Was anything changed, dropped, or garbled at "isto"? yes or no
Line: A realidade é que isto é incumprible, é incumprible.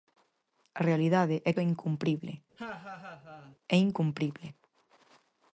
yes